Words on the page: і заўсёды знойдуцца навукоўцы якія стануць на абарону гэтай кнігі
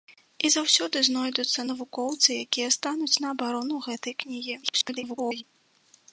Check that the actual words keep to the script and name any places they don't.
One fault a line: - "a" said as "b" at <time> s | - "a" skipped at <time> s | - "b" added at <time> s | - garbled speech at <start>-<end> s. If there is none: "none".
- garbled speech at 4.6-5.4 s